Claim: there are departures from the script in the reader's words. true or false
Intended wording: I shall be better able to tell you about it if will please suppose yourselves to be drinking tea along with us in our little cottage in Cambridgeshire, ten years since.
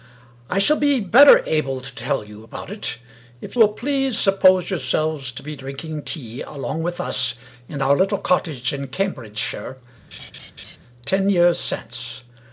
false